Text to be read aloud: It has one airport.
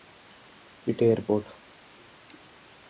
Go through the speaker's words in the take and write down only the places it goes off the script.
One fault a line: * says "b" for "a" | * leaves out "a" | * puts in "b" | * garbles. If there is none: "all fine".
* leaves out "has one"